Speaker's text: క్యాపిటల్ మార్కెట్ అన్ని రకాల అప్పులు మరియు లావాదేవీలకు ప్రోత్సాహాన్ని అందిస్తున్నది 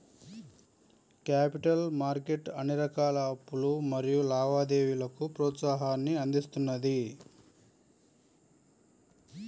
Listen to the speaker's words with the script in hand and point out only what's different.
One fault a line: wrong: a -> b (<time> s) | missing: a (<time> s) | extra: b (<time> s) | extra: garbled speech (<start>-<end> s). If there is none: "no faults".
no faults